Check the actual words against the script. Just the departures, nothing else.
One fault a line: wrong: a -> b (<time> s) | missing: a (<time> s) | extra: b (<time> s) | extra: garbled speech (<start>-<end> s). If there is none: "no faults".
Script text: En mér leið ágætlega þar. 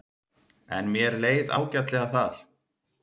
no faults